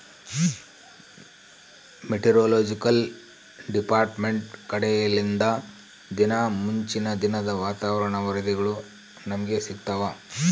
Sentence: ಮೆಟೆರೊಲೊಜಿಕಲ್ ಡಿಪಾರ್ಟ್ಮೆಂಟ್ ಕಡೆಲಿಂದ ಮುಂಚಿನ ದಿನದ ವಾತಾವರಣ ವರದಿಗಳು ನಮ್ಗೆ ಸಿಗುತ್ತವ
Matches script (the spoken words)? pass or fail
fail